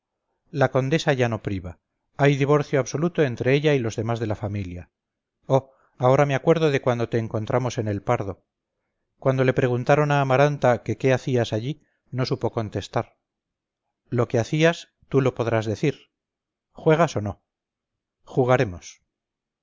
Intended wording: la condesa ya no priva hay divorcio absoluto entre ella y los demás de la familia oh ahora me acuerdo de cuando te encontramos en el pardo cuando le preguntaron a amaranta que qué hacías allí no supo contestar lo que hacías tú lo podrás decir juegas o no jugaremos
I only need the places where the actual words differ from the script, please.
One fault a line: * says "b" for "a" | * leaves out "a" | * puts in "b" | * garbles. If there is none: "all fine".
all fine